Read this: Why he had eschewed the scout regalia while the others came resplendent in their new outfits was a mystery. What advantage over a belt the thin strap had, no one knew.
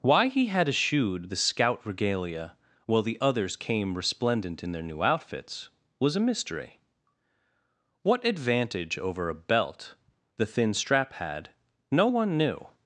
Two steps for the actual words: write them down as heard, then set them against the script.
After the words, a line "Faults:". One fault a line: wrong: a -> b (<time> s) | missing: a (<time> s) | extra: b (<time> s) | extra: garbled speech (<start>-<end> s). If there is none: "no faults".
Why he had eschewed the scout regalia while the others came resplendent in their new outfits was a mystery. What advantage over a belt the thin strap had, no one knew.
Faults:
no faults